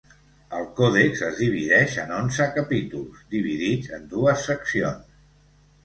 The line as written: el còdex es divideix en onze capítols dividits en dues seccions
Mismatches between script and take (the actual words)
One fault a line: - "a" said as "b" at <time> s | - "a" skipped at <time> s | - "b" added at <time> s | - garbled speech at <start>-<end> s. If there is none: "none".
none